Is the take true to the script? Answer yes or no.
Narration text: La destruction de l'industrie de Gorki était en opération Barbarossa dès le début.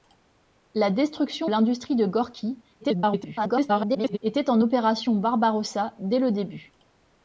no